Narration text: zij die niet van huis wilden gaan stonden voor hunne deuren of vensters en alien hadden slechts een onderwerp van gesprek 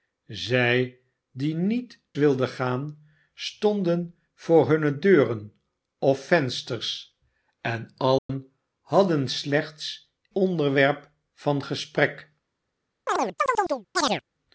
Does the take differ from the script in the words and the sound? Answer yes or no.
yes